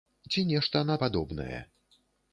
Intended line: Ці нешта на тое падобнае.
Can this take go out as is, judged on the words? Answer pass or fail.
fail